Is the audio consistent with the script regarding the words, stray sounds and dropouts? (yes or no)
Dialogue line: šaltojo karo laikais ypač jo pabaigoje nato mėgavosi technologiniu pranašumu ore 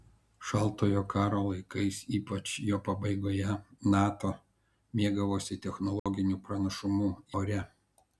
no